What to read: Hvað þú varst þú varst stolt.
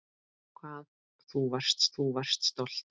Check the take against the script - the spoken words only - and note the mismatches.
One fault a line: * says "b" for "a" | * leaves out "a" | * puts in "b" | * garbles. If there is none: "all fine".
all fine